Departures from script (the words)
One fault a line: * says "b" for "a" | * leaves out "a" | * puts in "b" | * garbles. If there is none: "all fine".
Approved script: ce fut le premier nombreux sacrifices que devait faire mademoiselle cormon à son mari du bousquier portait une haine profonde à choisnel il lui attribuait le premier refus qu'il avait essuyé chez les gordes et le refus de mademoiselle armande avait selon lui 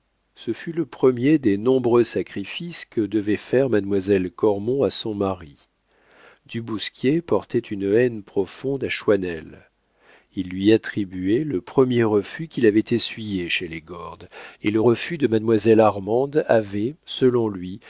* puts in "des"